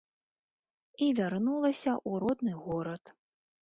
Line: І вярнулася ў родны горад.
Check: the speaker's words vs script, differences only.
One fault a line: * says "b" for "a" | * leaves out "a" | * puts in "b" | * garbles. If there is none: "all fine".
all fine